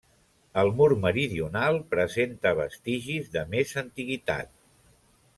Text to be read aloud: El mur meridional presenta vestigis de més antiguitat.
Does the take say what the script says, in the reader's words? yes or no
yes